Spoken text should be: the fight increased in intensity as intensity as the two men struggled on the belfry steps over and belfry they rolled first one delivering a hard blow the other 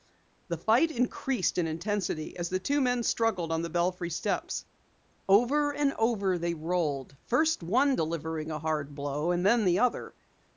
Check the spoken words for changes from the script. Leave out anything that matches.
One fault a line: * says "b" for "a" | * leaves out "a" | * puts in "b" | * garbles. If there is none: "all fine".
* leaves out "intensity as"
* says "over" for "belfry"
* puts in "and then"